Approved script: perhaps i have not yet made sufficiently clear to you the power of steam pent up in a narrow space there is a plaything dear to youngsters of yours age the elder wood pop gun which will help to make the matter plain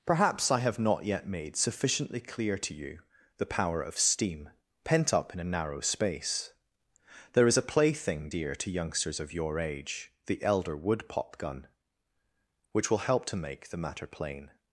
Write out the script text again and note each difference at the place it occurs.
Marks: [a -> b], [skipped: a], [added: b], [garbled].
perhaps i have not yet made sufficiently clear to you the power of steam pent up in a narrow space there is a plaything dear to youngsters of [yours -> your] age the elder wood pop gun which will help to make the matter plain